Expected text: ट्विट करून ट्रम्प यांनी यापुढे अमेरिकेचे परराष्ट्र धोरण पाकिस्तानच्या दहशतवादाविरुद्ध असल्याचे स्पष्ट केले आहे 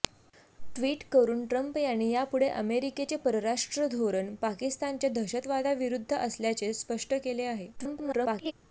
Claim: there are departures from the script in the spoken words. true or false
true